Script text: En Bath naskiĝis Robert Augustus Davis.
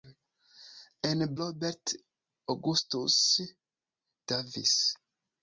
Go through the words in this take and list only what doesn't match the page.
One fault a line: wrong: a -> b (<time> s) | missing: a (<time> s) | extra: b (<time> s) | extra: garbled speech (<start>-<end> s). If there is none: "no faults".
missing: Bath naskiĝis (1.2 s)